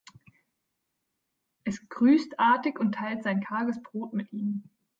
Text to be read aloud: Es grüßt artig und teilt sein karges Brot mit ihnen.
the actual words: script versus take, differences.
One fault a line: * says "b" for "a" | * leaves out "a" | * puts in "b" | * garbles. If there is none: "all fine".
all fine